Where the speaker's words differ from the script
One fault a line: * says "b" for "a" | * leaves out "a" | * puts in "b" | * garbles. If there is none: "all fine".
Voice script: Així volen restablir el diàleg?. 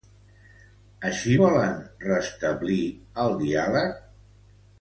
all fine